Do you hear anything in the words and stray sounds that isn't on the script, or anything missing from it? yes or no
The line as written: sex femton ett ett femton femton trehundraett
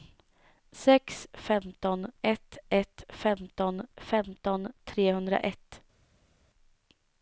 no